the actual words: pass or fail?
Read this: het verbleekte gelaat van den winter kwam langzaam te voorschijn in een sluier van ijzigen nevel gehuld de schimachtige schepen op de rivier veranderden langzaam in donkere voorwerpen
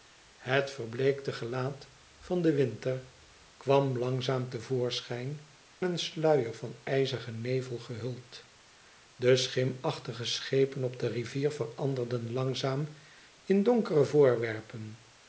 fail